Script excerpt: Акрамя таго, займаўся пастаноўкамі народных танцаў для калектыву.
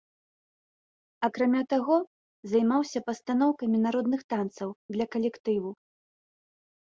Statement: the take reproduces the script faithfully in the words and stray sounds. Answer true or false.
true